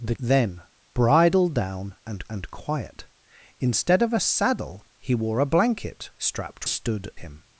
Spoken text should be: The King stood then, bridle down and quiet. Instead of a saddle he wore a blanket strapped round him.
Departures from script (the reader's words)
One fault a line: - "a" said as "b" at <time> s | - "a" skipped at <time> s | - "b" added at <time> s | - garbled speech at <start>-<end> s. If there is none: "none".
- "King stood" skipped at 0.1 s
- "and" added at 2.3 s
- "round" said as "stood" at 6.7 s